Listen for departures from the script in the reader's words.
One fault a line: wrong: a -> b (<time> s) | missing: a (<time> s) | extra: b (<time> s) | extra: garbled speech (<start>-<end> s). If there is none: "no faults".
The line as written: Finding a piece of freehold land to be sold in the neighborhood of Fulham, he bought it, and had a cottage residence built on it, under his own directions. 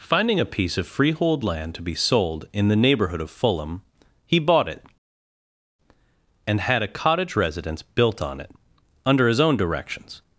no faults